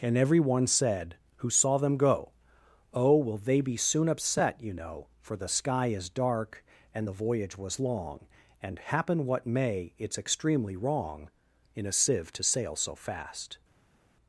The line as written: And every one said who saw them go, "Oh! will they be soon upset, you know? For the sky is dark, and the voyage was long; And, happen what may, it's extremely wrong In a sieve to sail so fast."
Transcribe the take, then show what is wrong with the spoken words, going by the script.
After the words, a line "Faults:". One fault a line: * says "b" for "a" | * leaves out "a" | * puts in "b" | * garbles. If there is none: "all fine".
And every one said who saw them go, "Oh! will they be soon upset, you know? For the sky is dark, and the voyage was long; And, happen what may, it's extremely wrong In a sieve to sail so fast."
Faults:
all fine